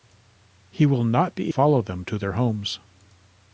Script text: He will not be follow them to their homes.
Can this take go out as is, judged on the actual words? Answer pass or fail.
pass